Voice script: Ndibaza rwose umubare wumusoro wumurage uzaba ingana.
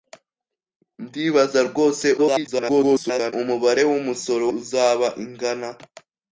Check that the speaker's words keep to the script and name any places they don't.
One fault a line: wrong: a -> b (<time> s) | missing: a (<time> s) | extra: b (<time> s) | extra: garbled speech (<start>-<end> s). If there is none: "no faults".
extra: garbled speech (2.2-3.3 s)
missing: wumurage (4.4 s)